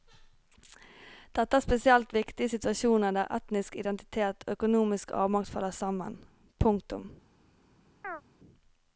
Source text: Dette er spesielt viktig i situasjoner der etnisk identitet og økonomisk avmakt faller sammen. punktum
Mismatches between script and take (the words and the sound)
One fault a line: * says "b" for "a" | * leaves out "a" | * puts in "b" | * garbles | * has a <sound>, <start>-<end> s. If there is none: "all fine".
* has a chirp, 8.0-8.2 s